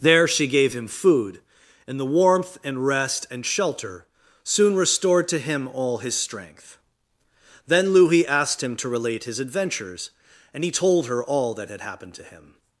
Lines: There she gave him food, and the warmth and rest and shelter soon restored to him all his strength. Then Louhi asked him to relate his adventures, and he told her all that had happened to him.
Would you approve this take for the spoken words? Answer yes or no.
yes